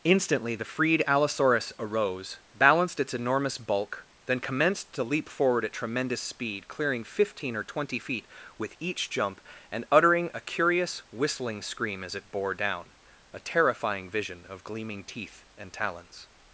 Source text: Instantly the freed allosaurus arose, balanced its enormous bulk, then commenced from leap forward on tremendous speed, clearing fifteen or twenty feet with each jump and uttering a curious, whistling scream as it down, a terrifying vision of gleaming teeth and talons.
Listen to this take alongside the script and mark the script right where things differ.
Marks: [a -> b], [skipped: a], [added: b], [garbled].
Instantly the freed allosaurus arose, balanced its enormous bulk, then commenced [from -> to] leap forward [on -> at] tremendous speed, clearing fifteen or twenty feet with each jump and uttering a curious, whistling scream as it [added: bore] down, a terrifying vision of gleaming teeth and talons.